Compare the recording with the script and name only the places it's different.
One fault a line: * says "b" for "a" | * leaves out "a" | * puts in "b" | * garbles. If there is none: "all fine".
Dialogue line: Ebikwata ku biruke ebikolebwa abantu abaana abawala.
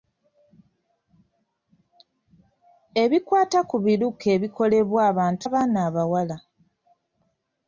all fine